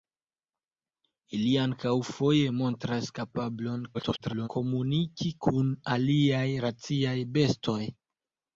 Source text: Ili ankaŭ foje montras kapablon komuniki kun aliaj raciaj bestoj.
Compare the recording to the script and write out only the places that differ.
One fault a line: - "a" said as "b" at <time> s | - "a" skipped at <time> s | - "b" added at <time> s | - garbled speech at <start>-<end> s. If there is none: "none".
- garbled speech at 3.9-4.5 s